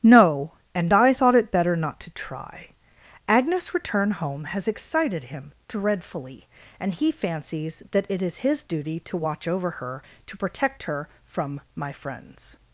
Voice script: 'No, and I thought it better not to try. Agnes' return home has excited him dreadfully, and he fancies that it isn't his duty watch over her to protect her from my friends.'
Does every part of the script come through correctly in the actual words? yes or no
no